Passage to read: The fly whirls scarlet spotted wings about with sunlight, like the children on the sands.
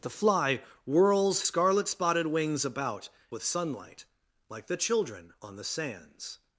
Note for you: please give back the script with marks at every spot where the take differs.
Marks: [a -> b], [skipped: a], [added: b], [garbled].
The fly whirls scarlet spotted wings about with sunlight, like the children on the sands.